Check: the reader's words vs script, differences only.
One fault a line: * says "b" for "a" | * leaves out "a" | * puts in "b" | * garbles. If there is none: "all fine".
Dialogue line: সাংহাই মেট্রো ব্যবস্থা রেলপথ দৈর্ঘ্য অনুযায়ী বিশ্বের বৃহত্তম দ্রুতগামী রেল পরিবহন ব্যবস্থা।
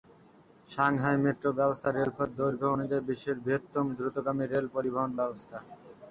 all fine